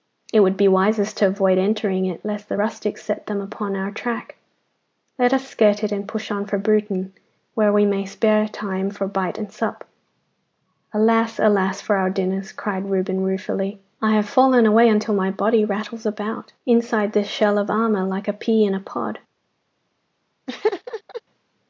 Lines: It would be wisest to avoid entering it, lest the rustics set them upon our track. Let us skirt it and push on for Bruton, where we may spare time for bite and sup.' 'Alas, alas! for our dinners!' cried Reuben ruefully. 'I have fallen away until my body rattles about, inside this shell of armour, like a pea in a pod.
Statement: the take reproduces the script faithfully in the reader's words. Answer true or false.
true